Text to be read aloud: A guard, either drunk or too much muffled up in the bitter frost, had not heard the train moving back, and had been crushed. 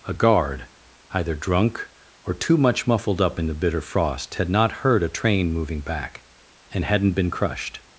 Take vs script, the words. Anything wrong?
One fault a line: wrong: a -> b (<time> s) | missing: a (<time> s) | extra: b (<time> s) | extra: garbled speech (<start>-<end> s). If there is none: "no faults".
wrong: the -> a (5.0 s)
wrong: had -> hadn't (6.8 s)